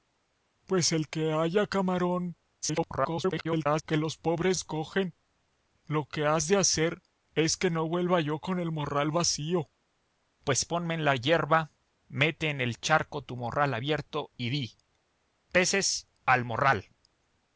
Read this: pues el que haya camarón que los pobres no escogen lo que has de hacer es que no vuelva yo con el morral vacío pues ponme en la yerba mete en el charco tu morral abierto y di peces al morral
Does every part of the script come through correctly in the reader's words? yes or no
no